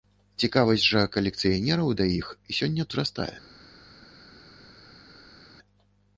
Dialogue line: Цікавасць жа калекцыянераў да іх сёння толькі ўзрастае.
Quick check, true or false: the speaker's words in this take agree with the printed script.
false